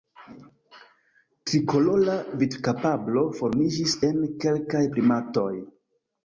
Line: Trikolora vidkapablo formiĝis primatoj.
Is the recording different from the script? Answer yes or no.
yes